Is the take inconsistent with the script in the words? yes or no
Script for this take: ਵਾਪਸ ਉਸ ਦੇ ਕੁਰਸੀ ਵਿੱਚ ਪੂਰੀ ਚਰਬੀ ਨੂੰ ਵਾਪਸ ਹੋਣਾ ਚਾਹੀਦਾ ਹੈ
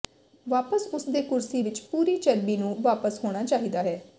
no